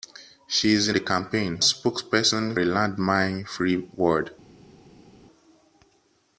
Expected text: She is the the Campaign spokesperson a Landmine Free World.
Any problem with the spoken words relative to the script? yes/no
no